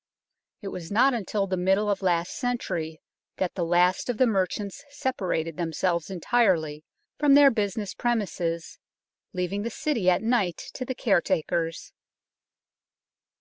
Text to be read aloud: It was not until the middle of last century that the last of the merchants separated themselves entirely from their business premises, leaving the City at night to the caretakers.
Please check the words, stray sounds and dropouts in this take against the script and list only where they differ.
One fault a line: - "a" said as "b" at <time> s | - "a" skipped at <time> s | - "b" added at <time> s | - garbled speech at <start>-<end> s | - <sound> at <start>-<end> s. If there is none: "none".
none